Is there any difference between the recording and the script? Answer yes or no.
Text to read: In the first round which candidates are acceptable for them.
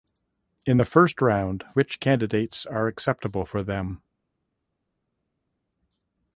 no